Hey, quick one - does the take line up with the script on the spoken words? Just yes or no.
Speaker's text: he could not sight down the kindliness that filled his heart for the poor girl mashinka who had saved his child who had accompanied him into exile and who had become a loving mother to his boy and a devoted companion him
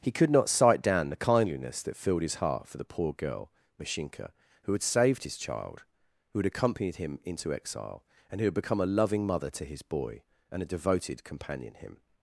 yes